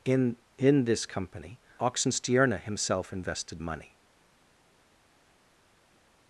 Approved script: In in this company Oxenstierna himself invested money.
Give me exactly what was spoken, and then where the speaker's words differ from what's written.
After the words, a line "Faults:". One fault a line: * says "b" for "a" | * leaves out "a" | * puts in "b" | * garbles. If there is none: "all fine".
In in this company Oxenstierna himself invested money.
Faults:
all fine